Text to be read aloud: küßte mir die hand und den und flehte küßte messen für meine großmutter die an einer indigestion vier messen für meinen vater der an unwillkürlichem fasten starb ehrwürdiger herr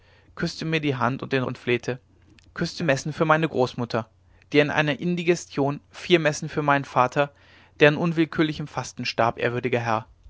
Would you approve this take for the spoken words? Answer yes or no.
yes